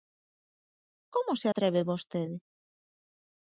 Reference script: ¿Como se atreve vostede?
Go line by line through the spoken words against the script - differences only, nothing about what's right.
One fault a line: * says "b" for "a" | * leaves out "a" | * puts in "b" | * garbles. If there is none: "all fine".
all fine